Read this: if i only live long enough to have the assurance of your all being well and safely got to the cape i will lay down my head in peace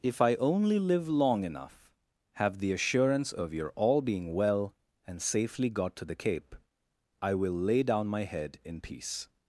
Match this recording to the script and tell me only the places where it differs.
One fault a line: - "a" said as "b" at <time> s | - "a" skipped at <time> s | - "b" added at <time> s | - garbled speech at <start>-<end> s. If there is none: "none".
- "to" skipped at 1.9 s